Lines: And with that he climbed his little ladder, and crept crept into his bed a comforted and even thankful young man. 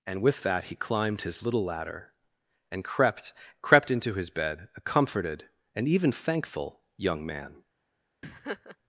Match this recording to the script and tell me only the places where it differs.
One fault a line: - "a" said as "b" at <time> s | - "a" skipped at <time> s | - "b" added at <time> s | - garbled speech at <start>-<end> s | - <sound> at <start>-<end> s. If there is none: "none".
- laugh at 8.2-8.8 s